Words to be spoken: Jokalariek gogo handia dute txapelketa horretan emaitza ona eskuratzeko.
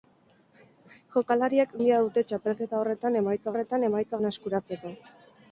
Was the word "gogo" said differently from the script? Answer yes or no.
yes